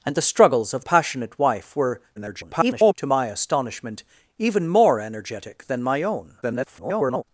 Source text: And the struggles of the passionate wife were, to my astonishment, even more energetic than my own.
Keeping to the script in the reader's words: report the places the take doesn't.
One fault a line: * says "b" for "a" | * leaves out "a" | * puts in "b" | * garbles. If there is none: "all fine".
* leaves out "the"
* garbles
* garbles